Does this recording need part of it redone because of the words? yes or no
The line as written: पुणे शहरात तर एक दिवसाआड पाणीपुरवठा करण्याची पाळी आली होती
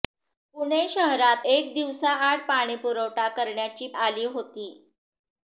yes